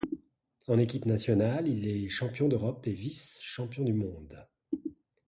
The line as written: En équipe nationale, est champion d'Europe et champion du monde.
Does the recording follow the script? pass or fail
fail